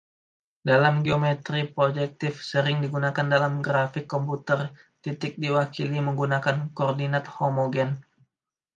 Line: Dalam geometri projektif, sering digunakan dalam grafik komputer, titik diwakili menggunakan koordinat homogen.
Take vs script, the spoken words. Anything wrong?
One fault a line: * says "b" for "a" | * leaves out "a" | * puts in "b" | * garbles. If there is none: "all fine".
all fine